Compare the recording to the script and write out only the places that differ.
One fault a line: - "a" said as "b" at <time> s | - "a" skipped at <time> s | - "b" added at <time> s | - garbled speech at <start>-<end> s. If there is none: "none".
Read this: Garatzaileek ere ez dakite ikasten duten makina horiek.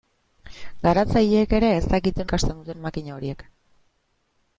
none